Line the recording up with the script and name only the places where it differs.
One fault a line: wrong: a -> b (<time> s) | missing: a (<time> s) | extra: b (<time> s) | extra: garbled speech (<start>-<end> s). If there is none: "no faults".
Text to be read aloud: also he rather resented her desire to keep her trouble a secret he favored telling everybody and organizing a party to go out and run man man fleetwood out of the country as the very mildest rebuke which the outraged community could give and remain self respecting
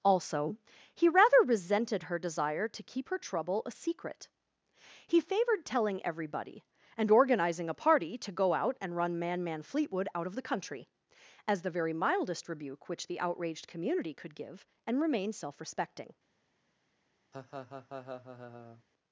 no faults